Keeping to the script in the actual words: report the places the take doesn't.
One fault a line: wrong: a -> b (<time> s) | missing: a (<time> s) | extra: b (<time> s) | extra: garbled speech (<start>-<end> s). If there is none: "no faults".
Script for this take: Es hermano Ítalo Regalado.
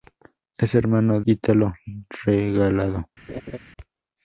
no faults